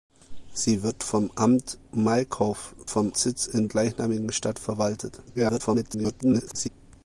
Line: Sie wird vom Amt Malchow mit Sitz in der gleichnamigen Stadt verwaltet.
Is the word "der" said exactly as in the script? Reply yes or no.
no